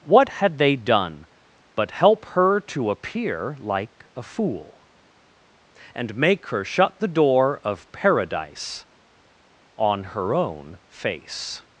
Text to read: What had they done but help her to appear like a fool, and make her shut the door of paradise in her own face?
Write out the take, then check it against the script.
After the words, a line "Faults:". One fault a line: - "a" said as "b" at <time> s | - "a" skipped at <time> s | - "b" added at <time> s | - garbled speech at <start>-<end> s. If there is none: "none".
What had they done but help her to appear like a fool, and make her shut the door of paradise on her own face?
Faults:
- "in" said as "on" at 9.8 s